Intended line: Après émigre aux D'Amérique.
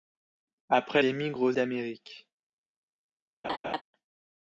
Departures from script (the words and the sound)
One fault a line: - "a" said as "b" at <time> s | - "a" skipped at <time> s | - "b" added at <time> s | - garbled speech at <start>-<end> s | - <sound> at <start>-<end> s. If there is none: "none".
- laugh at 3.4-3.8 s